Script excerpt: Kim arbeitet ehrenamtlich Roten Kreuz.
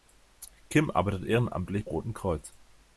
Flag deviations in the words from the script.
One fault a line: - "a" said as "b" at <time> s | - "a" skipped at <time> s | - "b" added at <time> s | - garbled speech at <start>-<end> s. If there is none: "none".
none